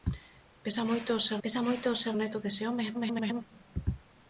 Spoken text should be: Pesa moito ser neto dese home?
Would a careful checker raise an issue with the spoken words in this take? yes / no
yes